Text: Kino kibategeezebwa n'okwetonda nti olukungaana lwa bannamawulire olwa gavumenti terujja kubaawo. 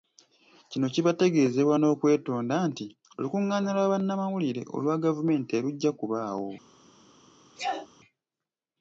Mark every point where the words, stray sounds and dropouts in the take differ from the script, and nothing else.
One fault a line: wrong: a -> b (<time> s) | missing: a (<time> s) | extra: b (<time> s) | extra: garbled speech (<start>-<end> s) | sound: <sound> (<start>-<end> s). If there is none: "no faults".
sound: sneeze (7.5-7.9 s)